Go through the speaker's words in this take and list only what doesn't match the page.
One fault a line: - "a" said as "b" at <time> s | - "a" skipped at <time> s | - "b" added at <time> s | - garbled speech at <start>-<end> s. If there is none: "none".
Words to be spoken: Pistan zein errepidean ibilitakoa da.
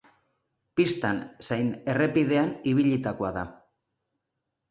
none